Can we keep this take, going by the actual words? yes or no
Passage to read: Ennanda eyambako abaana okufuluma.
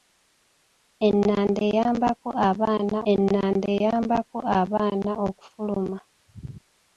no